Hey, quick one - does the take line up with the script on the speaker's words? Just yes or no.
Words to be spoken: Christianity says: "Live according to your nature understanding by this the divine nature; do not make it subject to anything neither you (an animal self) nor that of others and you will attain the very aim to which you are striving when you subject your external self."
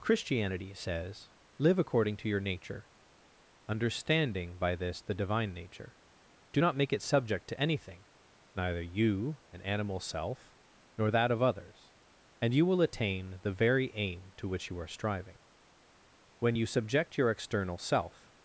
yes